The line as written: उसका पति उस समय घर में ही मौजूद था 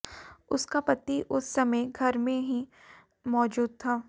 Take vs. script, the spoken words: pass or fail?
pass